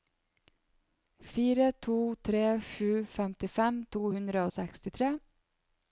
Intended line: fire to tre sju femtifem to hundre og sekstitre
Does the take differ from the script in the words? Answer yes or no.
no